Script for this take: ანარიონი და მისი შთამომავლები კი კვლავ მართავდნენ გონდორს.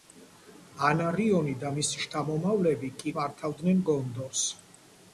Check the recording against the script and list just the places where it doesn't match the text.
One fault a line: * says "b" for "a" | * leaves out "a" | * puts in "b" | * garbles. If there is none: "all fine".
* leaves out "კვლავ"